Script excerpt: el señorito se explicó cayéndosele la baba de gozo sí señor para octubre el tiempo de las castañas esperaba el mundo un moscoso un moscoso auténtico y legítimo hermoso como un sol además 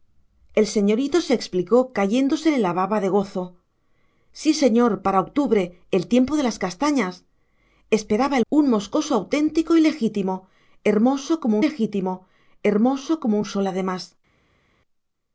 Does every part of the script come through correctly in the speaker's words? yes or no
no